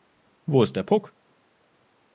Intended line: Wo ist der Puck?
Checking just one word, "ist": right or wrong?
right